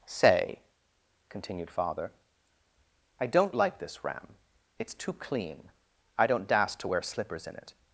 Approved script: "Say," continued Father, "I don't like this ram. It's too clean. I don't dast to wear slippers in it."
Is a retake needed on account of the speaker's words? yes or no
no